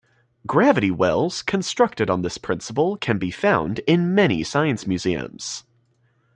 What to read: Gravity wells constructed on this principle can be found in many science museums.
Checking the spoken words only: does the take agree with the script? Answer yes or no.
yes